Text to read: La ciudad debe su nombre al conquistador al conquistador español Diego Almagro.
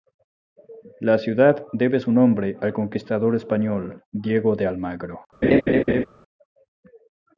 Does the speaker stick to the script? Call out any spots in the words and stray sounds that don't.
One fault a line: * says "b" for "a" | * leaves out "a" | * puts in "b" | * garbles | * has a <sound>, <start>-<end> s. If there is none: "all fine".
* leaves out "al conquistador"
* puts in "de"
* has a laugh, 5.4-6.0 s